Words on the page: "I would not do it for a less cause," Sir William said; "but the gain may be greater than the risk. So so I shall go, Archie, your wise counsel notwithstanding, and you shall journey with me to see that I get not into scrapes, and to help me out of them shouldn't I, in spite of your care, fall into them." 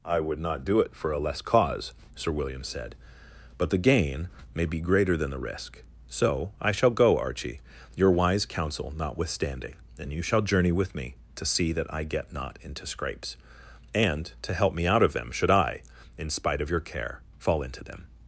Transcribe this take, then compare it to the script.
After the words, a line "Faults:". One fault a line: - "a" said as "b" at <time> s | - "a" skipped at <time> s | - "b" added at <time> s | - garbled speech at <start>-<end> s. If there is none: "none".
"I would not do it for a less cause," Sir William said; "but the gain may be greater than the risk. So I shall go, Archie, your wise counsel notwithstanding, and you shall journey with me to see that I get not into scrapes, and to help me out of them should I, in spite of your care, fall into them."
Faults:
- "so" skipped at 6.5 s
- "shouldn't" said as "should" at 15.3 s